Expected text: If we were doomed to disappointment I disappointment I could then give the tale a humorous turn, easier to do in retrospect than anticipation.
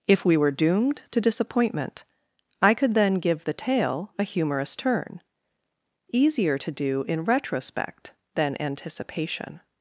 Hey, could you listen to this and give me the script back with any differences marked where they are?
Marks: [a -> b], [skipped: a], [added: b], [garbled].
If we were doomed to disappointment I [skipped: disappointment I] could then give the tale a humorous turn, easier to do in retrospect than anticipation.